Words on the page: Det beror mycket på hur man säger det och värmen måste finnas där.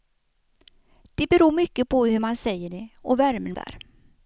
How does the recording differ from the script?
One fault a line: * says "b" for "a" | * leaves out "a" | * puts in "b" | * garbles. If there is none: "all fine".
* leaves out "måste finnas"